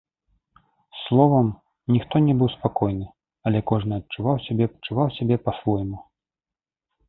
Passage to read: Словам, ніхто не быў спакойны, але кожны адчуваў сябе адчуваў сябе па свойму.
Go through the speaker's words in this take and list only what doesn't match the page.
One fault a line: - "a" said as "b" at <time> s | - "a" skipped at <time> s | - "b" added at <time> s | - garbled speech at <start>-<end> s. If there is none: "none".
none